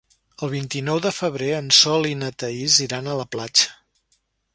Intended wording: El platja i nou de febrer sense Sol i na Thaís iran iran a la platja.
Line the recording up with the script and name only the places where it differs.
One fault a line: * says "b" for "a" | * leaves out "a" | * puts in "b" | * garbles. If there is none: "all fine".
* says "vint" for "platja"
* says "en" for "sense"
* leaves out "iran"